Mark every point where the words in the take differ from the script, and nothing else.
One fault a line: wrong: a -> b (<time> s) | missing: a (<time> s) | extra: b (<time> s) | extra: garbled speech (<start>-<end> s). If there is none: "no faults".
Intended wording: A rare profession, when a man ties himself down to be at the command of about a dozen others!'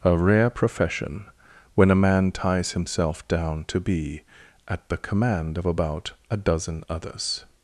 no faults